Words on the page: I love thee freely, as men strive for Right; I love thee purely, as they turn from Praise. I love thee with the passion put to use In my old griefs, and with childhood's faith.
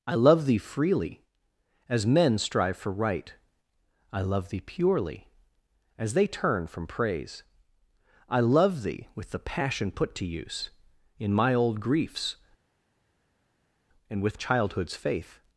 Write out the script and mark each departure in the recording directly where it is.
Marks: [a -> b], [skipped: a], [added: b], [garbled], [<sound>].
I love thee freely, as men strive for Right; I love thee purely, as they turn from Praise. I love thee with the passion put to use In my old griefs, and with childhood's faith.